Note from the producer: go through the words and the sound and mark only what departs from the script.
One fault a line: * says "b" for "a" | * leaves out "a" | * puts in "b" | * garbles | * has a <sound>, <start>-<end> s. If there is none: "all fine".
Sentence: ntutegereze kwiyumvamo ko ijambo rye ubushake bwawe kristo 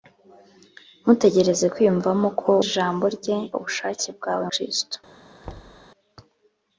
* has a thud, 5.4-5.9 s